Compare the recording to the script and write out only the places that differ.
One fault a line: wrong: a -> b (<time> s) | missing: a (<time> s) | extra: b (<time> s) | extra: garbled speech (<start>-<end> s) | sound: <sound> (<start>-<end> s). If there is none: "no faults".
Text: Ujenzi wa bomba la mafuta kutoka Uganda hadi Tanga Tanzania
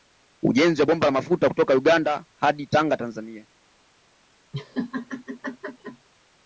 sound: laugh (4.5-6.1 s)